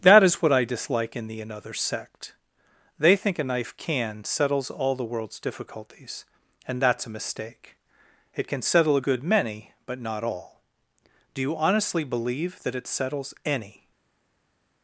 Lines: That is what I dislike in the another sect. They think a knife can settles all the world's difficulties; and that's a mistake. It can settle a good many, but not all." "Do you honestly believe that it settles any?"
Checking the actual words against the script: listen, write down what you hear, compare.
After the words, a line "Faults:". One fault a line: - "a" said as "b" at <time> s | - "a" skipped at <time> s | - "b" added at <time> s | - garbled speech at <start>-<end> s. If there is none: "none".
That is what I dislike in the another sect. They think a knife can settles all the world's difficulties; and that's a mistake. It can settle a good many, but not all." "Do you honestly believe that it settles any?"
Faults:
none